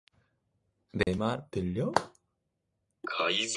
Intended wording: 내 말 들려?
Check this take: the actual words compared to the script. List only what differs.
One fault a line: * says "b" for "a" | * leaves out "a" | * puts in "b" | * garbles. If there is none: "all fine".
all fine